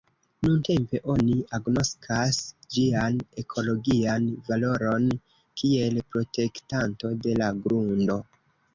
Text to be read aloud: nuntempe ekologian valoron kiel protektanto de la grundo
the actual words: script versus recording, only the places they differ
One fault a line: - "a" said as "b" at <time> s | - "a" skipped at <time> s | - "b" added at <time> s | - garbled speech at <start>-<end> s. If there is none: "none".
- "oni agnoskas ĝian" added at 1.1 s